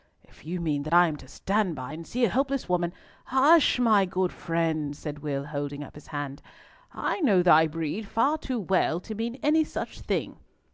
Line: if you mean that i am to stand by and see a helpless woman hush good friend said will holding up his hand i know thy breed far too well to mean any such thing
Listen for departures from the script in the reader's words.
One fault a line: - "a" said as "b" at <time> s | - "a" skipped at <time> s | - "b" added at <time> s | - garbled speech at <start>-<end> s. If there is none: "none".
- "my" added at 3.8 s